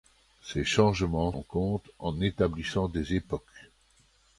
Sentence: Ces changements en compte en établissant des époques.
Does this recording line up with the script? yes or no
yes